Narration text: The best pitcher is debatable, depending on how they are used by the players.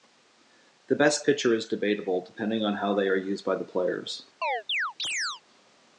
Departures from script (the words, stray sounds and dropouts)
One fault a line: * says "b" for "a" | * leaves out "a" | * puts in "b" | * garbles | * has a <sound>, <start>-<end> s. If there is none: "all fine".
* has a chirp, 4.4-5.4 s